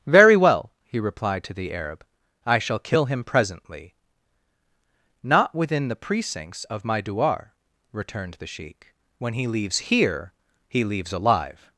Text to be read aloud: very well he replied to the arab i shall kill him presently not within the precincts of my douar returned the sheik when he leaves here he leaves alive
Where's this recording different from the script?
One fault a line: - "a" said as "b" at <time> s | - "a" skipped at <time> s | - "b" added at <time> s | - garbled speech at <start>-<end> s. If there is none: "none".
none